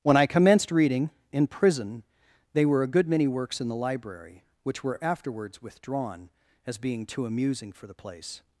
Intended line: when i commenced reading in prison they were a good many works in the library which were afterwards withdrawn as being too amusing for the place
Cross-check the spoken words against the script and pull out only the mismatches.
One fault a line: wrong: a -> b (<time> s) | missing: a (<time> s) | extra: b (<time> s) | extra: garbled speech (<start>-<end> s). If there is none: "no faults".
no faults